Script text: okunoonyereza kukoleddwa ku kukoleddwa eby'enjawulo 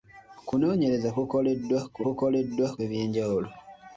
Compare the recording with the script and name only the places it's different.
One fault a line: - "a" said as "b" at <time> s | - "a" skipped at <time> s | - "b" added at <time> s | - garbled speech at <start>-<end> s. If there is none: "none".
none